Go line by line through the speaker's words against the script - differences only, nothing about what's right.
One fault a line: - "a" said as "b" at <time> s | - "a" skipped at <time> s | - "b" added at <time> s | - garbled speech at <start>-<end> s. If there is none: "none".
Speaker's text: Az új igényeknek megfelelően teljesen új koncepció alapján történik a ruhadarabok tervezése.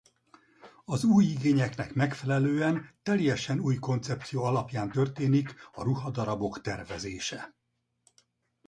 none